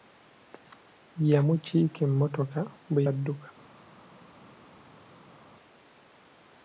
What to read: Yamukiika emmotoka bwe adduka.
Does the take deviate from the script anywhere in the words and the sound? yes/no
no